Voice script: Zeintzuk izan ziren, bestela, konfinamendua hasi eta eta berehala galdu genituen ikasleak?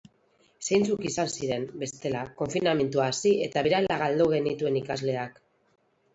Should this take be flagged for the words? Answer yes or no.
yes